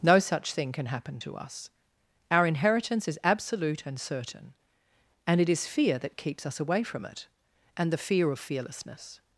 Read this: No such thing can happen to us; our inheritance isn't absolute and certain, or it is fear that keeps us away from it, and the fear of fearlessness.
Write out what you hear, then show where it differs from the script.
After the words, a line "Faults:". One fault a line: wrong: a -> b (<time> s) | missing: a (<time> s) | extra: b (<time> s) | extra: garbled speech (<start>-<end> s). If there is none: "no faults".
No such thing can happen to us; our inheritance is absolute and certain, and it is fear that keeps us away from it, and the fear of fearlessness.
Faults:
wrong: isn't -> is (3.1 s)
wrong: or -> and (5.3 s)